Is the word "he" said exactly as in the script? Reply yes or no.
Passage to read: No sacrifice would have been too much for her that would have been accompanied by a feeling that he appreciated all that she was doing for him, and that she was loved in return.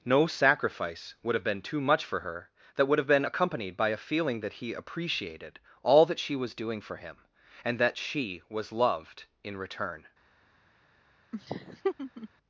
yes